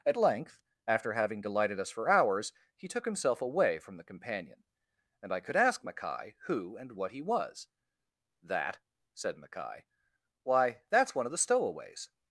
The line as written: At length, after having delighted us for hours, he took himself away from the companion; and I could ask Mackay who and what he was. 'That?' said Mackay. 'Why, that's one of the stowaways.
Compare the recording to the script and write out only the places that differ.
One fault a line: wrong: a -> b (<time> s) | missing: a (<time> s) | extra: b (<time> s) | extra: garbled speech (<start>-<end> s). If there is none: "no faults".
no faults